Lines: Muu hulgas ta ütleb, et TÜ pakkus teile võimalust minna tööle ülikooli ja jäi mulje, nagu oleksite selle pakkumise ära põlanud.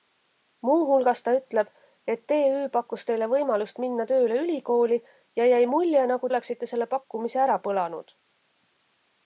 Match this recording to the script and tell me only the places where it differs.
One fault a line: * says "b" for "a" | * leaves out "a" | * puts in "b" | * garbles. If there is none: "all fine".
all fine